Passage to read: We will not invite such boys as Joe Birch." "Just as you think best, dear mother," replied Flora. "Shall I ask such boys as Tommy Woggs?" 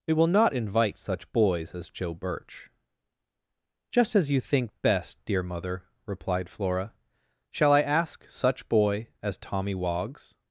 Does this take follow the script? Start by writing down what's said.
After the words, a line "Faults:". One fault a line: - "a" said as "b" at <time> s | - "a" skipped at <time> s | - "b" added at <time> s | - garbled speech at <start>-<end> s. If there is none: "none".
We will not invite such boys as Joe Birch." "Just as you think best, dear mother," replied Flora. "Shall I ask such boy as Tommy Woggs?"
Faults:
- "boys" said as "boy" at 8.7 s